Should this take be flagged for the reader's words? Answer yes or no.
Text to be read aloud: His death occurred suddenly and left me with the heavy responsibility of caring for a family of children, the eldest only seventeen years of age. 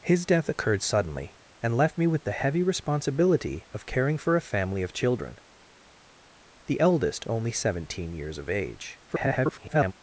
yes